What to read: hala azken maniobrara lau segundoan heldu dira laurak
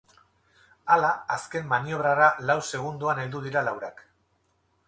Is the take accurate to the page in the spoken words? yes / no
yes